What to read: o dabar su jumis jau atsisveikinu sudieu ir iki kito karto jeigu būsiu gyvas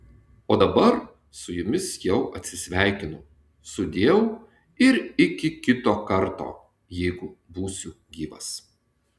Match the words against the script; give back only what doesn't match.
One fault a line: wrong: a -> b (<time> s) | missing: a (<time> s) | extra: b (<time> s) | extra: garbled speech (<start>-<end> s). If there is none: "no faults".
no faults